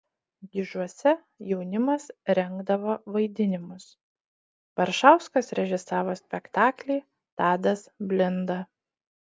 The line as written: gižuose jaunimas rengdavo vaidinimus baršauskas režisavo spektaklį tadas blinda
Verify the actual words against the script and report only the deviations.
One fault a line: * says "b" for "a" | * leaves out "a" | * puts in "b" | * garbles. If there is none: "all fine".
all fine